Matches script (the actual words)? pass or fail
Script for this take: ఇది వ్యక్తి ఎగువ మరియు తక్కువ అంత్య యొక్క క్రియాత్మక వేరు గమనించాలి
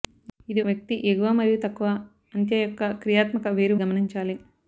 pass